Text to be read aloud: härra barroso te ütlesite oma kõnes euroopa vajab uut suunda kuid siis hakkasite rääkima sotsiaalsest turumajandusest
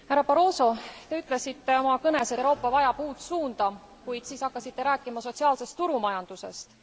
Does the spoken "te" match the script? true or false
true